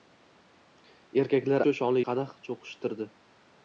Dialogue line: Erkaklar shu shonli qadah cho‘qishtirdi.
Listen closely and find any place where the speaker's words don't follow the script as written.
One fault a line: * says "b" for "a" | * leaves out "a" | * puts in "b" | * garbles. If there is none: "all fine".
all fine